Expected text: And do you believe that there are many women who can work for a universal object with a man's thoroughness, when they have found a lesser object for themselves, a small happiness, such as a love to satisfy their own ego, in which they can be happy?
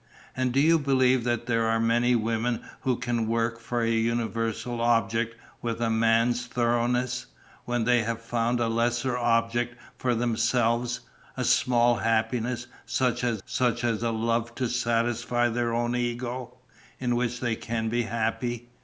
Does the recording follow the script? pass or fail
fail